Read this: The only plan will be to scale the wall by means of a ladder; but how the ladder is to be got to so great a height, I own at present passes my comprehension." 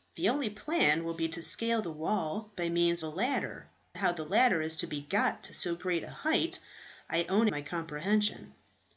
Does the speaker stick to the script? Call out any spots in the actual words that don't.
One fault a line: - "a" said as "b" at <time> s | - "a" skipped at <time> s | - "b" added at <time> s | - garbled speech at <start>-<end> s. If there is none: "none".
- "of" skipped at 3.0 s
- "but" skipped at 3.7 s
- "at present passes" skipped at 7.5 s